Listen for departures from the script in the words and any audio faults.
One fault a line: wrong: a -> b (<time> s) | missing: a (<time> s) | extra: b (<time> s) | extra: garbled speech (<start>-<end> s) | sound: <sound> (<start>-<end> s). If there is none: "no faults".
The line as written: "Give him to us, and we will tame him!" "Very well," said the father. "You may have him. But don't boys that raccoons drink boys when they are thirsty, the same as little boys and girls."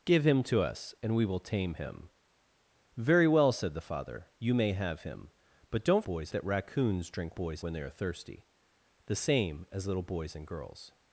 no faults